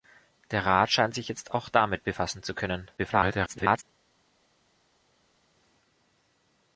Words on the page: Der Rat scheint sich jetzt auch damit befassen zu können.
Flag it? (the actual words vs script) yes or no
yes